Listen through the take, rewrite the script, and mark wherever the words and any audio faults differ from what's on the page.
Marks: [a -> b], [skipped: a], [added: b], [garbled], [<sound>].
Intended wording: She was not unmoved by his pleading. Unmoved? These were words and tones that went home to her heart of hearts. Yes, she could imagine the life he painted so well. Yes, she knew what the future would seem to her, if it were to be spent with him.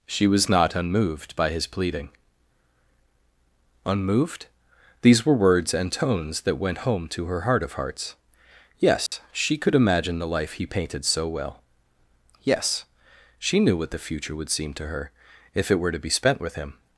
She was not unmoved by his pleading. Unmoved? These were words and tones that went home to her heart of hearts. Yes, [dropout] she could imagine the life he painted so well. Yes, she knew what the future would seem to her, if it were to be spent with him.